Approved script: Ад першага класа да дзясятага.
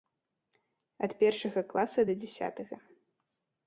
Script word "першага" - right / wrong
right